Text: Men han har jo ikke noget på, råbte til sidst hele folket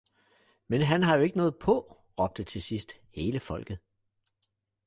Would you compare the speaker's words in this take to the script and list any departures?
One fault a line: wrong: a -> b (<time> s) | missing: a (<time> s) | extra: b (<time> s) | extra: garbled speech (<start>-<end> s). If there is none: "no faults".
no faults